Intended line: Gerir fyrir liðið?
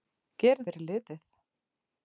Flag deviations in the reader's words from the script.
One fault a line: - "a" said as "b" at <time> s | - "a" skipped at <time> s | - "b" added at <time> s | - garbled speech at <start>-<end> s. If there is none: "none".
none